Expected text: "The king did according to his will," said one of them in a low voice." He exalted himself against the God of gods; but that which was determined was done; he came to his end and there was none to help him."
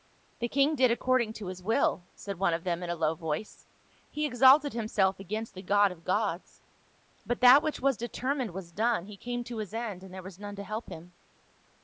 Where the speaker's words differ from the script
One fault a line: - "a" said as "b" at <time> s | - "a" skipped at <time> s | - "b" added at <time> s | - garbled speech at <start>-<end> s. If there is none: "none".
none